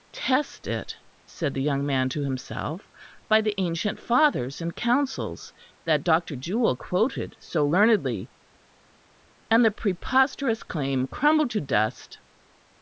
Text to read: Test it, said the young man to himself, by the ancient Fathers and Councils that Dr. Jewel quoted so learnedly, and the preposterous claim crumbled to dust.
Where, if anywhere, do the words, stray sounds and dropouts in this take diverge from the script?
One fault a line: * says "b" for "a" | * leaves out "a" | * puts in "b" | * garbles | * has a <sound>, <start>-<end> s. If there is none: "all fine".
all fine